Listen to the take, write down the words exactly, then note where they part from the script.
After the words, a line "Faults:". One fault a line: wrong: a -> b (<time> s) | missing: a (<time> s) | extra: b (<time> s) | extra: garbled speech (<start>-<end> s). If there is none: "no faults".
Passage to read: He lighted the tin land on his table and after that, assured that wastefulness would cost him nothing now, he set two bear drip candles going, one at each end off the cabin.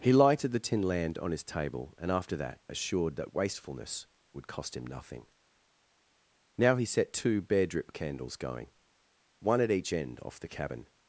He lighted the tin land on his table and after that, assured that wastefulness would cost him nothing now, he set two bear drip candles going, one at each end off the cabin.
Faults:
no faults